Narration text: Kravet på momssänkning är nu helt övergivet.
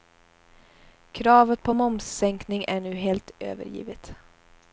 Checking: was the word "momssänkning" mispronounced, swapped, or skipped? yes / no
no